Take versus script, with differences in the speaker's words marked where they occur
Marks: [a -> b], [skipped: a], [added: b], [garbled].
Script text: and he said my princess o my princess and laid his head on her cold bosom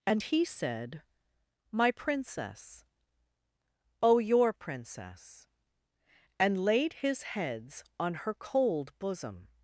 and he said my princess o [my -> your] princess and laid his [head -> heads] on her cold bosom